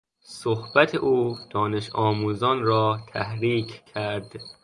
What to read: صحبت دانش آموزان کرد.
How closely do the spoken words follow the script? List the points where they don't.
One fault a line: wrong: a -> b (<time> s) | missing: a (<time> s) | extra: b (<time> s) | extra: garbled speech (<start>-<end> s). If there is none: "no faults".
extra: او (0.9 s)
extra: را تحریک (2.6 s)